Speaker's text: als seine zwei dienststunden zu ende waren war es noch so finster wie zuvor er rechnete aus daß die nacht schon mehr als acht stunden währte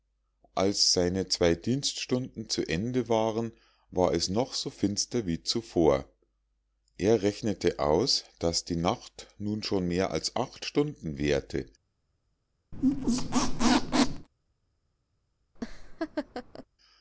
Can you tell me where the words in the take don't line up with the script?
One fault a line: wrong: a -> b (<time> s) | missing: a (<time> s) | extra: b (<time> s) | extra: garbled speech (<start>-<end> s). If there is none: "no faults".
extra: nun (9.4 s)